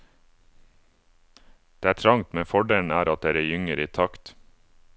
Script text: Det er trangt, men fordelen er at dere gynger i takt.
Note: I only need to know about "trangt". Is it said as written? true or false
true